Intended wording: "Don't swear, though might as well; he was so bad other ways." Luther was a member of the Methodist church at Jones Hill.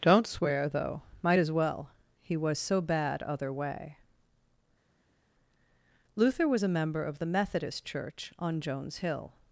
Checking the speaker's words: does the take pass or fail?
fail